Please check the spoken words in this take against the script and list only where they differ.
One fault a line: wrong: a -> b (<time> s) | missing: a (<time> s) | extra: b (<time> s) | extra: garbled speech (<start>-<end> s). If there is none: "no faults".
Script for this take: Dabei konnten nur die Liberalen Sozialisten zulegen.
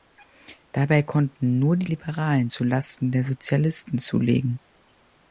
extra: zu Lasten der (2.5 s)